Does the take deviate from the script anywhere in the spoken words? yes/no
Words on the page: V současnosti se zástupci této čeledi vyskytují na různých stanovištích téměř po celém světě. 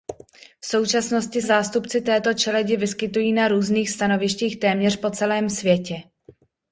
yes